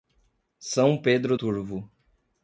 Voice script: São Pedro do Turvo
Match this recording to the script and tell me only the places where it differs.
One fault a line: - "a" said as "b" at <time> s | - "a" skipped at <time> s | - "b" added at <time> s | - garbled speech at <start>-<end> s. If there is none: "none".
- "do" skipped at 1.4 s